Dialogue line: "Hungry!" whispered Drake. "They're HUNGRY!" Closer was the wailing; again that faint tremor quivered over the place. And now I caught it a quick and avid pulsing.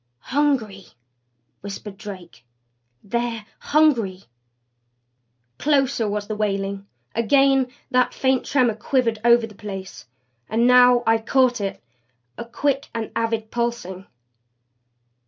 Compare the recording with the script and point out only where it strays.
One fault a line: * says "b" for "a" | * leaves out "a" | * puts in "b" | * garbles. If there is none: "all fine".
all fine